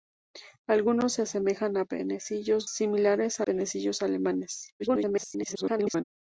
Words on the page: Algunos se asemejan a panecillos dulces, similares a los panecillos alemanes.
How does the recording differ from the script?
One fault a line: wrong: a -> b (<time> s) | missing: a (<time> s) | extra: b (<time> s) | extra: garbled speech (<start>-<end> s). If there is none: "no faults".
missing: dulces (2.7 s)
missing: los (3.5 s)
extra: garbled speech (4.8-6.0 s)